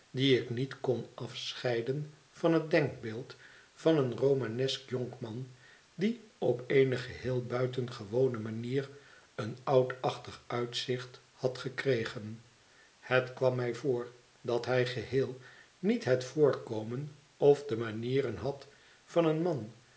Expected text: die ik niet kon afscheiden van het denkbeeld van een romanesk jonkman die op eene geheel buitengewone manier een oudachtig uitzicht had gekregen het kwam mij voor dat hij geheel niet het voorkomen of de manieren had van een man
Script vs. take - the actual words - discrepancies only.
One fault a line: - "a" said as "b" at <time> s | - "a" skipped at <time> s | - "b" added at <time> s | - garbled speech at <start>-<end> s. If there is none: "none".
none